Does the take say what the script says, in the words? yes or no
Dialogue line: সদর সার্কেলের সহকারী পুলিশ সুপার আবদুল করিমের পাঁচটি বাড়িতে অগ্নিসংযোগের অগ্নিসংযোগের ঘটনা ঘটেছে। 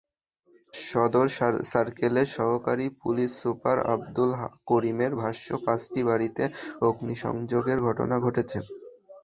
no